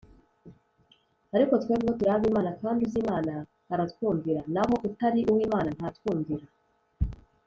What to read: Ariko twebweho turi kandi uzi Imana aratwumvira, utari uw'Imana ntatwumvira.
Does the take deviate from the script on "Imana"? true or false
false